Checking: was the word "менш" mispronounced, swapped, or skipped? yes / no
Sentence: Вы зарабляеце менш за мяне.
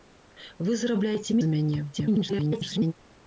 yes